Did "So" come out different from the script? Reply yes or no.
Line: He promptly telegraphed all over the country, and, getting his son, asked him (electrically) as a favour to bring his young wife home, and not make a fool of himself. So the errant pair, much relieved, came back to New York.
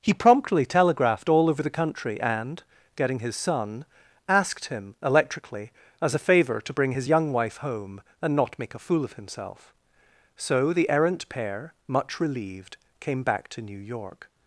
no